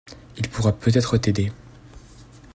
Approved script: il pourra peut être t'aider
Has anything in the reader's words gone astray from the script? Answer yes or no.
no